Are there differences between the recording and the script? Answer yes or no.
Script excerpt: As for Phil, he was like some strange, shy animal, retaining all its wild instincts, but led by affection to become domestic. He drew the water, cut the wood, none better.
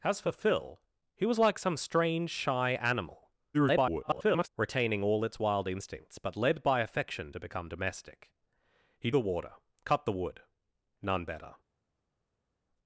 yes